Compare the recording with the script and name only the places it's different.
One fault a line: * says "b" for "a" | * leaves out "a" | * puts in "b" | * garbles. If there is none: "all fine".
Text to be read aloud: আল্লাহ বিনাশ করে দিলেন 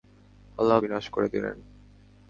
all fine